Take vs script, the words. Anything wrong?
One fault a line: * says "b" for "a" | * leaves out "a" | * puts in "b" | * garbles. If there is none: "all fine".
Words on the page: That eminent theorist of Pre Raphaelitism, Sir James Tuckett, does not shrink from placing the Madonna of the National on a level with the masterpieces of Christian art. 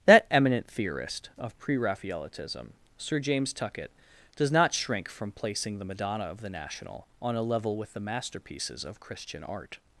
all fine